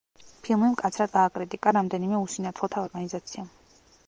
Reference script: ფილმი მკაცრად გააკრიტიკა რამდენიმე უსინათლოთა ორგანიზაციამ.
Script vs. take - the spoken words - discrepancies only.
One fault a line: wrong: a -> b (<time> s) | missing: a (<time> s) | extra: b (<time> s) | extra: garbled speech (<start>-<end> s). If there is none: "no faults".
no faults